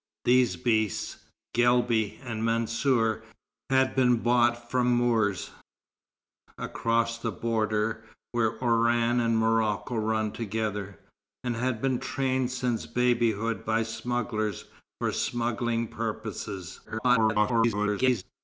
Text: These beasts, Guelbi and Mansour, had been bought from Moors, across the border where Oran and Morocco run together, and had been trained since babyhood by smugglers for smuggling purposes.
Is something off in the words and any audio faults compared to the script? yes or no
yes